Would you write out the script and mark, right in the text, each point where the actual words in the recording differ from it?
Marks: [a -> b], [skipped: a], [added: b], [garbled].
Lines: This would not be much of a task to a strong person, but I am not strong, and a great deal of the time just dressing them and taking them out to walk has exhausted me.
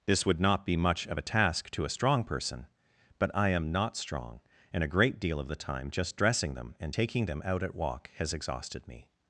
This would not be much of a task to a strong person, but I am not strong, and a great deal of the time just dressing them and taking them out [to -> at] walk has exhausted me.